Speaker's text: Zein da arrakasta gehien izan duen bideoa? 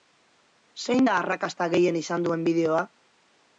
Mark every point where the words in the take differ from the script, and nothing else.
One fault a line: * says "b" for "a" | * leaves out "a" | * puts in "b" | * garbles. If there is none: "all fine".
all fine